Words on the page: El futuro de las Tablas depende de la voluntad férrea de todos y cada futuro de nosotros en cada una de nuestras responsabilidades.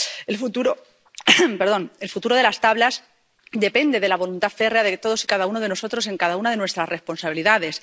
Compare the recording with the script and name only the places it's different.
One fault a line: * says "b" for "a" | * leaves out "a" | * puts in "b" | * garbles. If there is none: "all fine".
* says "uno" for "futuro"